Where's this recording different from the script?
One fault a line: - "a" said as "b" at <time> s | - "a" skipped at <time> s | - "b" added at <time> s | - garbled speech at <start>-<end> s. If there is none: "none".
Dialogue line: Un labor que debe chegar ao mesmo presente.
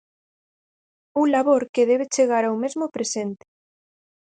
none